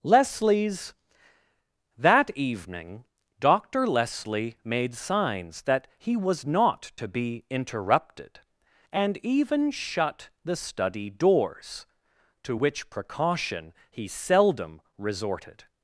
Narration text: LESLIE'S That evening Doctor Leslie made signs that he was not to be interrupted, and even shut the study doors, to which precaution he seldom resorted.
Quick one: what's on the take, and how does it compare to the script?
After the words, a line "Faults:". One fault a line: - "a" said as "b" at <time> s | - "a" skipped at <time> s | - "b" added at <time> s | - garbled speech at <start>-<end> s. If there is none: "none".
LESLIE'S That evening Doctor Leslie made signs that he was not to be interrupted, and even shut the study doors, to which precaution he seldom resorted.
Faults:
none